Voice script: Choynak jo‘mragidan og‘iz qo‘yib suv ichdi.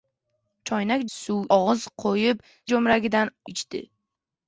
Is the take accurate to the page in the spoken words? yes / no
no